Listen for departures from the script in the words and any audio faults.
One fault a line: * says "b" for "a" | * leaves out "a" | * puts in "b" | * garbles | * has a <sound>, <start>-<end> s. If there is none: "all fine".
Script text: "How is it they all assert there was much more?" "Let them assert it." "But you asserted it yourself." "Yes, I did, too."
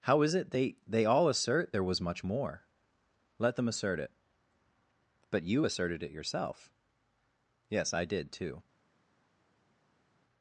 * puts in "they"